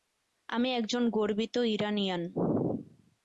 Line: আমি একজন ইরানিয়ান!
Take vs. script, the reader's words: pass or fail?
fail